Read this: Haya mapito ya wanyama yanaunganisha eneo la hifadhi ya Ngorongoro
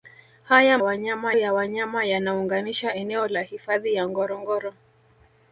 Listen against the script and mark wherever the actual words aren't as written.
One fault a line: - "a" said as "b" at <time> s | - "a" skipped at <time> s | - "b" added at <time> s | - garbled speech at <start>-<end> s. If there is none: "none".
- "mapito" said as "wanyama" at 0.8 s